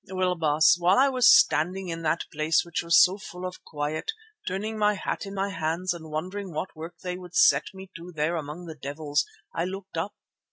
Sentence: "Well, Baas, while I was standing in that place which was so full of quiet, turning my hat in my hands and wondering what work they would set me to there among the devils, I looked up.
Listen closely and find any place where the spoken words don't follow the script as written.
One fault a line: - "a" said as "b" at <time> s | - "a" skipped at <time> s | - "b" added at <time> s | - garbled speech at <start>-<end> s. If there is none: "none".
none